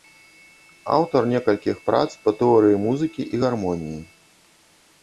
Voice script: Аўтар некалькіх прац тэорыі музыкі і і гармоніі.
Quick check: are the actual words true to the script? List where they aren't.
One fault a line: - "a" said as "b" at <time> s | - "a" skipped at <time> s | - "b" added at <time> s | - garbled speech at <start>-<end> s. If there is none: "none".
- "па" added at 2.2 s
- "і" skipped at 3.4 s